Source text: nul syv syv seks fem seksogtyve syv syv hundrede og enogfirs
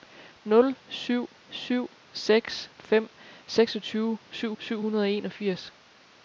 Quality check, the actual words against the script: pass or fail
pass